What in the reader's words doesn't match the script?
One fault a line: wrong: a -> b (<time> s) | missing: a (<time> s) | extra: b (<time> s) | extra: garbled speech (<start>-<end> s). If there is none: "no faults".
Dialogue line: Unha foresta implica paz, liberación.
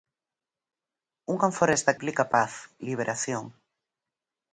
no faults